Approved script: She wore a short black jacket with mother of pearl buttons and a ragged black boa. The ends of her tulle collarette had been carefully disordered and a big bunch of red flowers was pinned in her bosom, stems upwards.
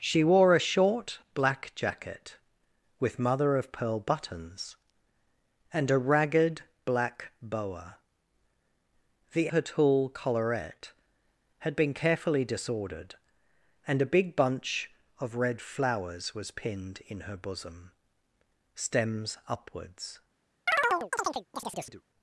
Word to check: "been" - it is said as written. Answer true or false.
true